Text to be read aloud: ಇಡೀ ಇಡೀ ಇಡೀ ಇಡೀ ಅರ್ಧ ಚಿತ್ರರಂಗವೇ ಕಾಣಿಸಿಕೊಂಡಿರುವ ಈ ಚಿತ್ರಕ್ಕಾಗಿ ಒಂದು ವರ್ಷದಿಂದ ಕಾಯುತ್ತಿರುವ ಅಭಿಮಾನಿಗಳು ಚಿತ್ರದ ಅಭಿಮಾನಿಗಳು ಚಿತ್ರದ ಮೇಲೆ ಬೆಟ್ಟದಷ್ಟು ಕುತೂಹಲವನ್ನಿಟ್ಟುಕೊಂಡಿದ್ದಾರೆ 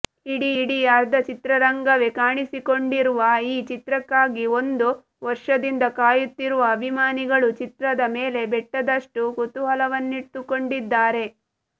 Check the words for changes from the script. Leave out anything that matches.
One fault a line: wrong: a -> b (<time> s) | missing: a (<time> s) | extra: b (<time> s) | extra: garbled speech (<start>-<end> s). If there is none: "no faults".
missing: ಇಡೀ ಇಡೀ (0.8 s)
missing: ಅಭಿಮಾನಿಗಳು ಚಿತ್ರದ (8.0 s)